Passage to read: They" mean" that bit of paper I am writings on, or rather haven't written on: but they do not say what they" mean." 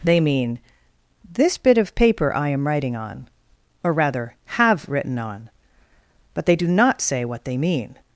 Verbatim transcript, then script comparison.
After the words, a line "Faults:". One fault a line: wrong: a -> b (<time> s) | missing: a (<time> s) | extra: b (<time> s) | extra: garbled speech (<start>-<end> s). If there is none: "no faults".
They" mean" this bit of paper I am writing on, or rather have written on: but they do not say what they" mean."
Faults:
wrong: that -> this (1.3 s)
wrong: writings -> writing (2.7 s)
wrong: haven't -> have (4.5 s)